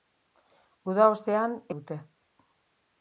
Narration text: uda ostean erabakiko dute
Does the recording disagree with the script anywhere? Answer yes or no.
yes